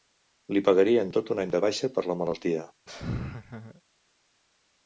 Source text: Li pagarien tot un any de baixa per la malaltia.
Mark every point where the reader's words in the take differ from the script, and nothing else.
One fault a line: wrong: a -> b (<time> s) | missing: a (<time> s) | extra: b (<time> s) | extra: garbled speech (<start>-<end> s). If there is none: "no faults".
no faults